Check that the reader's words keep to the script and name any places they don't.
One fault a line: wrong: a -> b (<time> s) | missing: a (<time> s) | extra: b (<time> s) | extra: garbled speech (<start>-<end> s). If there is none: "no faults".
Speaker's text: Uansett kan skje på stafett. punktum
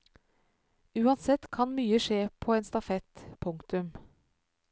extra: mye (1.8 s)
extra: en (2.6 s)